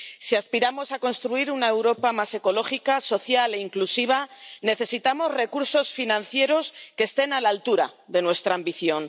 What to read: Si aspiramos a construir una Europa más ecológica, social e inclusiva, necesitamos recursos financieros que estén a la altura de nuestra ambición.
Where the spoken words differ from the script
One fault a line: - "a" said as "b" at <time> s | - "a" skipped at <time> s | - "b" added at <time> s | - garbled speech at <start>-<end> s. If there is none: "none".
none